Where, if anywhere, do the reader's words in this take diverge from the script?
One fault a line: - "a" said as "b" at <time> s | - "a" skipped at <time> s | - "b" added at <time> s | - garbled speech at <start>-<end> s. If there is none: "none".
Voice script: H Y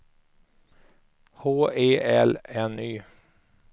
- "E L N" added at 1.8 s